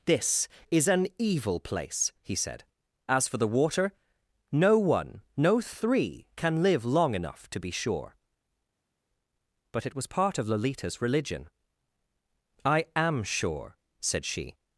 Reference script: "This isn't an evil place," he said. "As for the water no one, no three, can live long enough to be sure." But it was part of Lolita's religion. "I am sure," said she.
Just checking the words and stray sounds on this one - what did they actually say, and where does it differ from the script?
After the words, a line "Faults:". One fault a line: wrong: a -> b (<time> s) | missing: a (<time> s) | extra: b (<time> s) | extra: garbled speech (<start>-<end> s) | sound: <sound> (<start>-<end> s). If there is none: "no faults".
"This is an evil place," he said. "As for the water no one, no three, can live long enough to be sure." But it was part of Lolita's religion. "I am sure," said she.
Faults:
wrong: isn't -> is (0.7 s)